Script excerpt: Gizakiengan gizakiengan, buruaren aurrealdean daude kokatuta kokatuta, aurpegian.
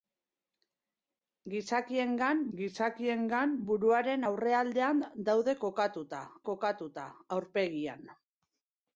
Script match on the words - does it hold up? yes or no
yes